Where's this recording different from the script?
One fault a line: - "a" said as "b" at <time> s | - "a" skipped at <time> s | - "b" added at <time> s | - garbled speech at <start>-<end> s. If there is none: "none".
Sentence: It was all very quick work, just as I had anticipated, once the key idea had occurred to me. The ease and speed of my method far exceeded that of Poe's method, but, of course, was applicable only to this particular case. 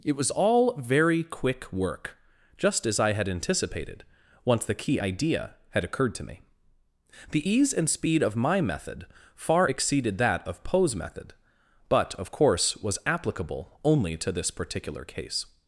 none